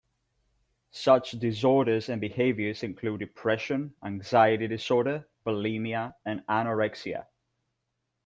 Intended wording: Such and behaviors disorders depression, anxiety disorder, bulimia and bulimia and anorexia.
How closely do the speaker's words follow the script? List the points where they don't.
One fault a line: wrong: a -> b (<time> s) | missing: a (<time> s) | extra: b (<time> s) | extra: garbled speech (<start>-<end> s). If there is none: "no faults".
extra: disorders (1.3 s)
wrong: disorders -> include (2.8 s)
missing: bulimia and (6.4 s)